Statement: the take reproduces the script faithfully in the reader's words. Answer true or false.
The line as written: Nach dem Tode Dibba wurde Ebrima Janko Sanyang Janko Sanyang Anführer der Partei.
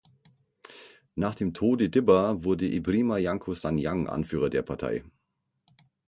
false